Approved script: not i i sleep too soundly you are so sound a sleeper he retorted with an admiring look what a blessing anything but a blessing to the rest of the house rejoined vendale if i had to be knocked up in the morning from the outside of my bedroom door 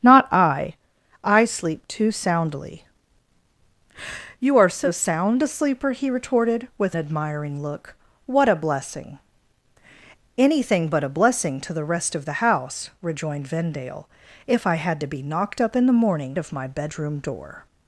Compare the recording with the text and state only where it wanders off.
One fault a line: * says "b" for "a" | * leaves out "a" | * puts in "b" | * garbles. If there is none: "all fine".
* leaves out "an"
* leaves out "from the outside"